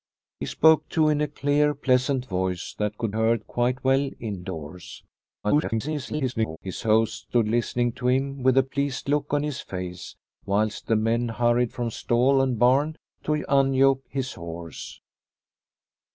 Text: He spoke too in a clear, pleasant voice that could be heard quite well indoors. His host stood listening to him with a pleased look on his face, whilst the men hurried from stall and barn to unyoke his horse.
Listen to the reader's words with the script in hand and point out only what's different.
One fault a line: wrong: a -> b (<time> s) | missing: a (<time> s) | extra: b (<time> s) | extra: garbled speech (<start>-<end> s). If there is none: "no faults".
missing: be (3.1 s)
extra: garbled speech (5.4-6.6 s)